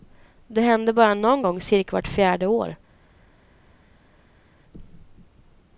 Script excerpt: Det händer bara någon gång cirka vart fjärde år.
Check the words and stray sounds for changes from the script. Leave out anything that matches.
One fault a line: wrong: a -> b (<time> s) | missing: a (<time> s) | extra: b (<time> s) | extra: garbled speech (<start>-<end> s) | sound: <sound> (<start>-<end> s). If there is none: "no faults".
no faults